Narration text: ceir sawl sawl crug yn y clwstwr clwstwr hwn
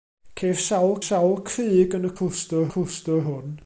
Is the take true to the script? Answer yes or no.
yes